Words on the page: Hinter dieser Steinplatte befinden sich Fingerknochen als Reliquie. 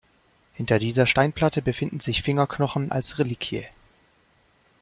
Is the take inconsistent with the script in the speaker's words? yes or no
no